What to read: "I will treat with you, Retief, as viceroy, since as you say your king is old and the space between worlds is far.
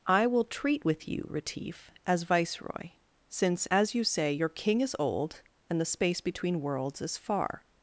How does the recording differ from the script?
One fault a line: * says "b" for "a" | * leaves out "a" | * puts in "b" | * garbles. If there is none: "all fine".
all fine